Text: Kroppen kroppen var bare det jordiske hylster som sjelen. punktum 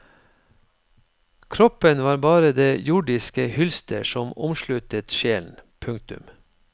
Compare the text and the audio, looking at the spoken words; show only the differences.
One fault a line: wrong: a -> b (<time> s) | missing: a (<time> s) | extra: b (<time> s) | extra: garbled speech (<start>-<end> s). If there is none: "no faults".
missing: kroppen (2.0 s)
extra: omsluttet (4.4 s)